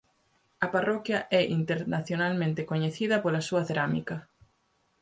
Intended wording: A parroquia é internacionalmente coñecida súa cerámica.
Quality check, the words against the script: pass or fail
fail